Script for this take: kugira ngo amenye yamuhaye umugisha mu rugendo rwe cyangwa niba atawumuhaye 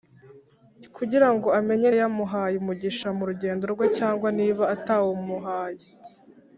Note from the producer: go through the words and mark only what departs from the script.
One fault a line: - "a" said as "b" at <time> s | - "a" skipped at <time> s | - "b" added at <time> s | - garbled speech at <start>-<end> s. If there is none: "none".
none